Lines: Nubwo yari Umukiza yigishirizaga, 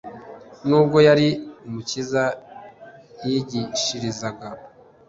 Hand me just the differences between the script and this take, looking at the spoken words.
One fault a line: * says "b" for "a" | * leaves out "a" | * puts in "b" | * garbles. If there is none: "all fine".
all fine